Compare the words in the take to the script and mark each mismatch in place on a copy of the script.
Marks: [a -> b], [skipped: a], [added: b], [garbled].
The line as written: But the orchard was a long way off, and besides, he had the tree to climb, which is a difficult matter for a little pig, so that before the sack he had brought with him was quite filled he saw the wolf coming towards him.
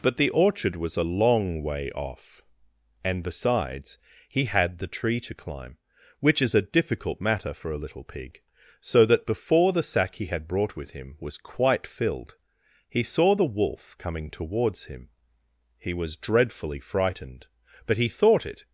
But the orchard was a long way off, and besides, he had the tree to climb, which is a difficult matter for a little pig, so that before the sack he had brought with him was quite filled he saw the wolf coming towards him. [added: He was dreadfully frightened but he thought it]